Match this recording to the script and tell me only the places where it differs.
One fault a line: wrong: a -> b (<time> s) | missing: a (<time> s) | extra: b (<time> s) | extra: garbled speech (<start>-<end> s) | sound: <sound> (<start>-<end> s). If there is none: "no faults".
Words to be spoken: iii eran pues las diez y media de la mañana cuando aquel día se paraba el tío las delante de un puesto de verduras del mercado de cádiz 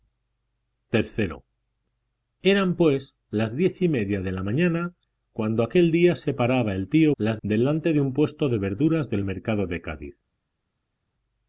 no faults